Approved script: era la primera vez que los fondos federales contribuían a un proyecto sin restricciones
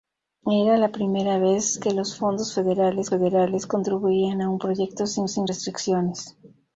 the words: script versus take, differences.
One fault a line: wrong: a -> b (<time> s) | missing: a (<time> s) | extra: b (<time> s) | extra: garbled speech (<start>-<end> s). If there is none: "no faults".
extra: federales (3.1 s)
extra: sin (5.2 s)